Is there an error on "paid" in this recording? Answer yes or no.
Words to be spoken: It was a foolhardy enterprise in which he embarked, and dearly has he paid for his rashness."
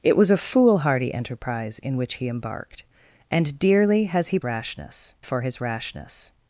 yes